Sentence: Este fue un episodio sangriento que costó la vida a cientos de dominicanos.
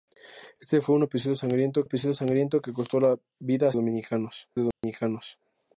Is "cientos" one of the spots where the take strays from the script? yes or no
yes